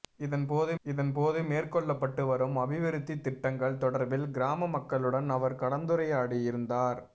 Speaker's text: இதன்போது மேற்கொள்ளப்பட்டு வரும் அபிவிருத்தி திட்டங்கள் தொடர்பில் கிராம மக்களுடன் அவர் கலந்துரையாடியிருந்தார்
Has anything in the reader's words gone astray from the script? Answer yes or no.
yes